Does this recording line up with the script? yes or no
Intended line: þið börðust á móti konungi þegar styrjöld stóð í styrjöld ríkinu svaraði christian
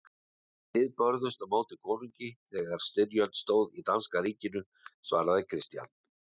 no